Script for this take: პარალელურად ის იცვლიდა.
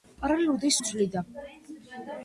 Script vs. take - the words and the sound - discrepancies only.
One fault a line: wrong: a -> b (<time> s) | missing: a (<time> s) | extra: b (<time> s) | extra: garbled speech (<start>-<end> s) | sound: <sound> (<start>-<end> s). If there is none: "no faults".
no faults